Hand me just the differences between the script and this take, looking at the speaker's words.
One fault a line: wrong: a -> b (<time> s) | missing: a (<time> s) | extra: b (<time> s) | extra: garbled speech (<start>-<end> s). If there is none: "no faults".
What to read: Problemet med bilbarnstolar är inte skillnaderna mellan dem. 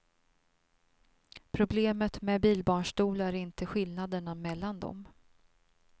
no faults